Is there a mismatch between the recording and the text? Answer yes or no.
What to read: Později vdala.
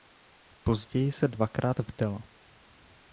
yes